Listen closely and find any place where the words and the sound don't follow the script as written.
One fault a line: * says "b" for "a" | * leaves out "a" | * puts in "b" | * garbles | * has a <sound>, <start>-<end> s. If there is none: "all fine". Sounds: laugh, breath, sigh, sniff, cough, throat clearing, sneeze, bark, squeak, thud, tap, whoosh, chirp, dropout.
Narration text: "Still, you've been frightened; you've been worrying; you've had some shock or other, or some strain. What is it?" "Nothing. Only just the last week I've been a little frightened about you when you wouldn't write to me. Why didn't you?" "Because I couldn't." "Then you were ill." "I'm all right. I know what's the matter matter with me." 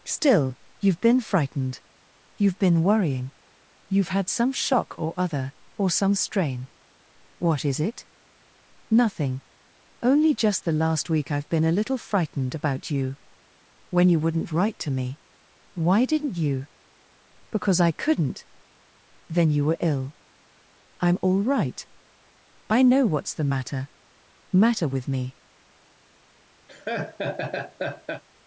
* has a laugh, 26.7-28.2 s